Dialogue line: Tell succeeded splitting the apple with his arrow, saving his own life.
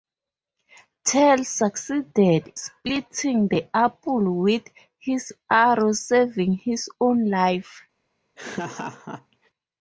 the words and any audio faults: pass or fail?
fail